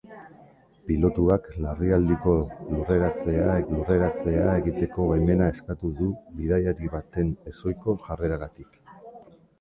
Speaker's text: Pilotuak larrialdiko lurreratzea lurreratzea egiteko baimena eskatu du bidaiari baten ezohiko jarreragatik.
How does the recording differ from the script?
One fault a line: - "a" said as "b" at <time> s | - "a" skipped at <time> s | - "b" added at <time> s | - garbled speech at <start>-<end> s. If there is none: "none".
none